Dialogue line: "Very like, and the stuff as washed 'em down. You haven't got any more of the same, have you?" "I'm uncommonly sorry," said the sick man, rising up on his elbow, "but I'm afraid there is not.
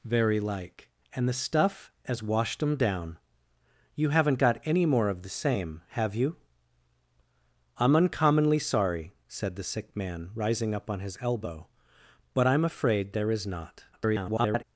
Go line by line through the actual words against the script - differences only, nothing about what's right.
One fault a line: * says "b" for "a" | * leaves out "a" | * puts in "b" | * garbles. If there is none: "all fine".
* garbles